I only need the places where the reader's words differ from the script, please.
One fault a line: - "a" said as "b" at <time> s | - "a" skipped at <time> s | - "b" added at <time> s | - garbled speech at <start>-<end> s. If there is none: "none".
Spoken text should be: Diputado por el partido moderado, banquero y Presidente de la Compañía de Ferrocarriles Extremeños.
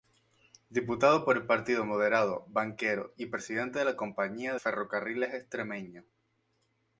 - "de" skipped at 4.5 s